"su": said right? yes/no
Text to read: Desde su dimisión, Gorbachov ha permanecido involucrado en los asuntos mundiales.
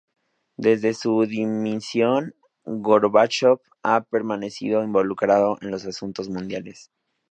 yes